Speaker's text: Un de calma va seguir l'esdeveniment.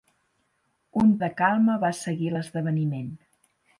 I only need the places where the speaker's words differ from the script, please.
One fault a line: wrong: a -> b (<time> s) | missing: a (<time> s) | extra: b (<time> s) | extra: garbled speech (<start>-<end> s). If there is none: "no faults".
no faults